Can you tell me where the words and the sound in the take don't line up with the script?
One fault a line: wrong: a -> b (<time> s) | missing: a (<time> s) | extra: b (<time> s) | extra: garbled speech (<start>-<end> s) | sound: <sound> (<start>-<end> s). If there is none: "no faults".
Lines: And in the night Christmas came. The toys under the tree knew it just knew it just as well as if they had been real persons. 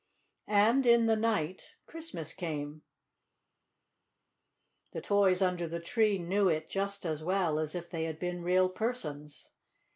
missing: knew it just (7.0 s)